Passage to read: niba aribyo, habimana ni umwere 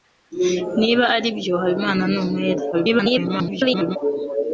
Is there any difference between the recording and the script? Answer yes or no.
yes